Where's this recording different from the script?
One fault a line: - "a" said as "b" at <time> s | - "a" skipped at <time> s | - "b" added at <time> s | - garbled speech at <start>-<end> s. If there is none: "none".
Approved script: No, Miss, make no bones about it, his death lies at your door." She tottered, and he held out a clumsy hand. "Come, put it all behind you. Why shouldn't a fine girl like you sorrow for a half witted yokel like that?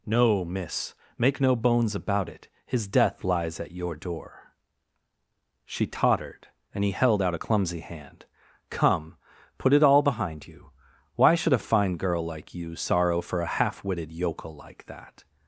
- "shouldn't" said as "should" at 11.3 s